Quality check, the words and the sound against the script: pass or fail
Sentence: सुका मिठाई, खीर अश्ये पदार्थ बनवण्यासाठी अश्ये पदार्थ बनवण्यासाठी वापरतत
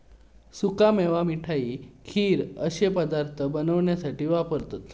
fail